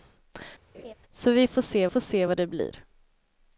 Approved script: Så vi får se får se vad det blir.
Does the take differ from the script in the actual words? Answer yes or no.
no